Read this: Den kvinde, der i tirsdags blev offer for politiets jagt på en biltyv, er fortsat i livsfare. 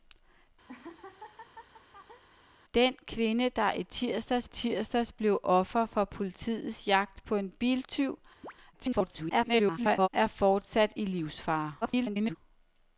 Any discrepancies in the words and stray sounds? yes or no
yes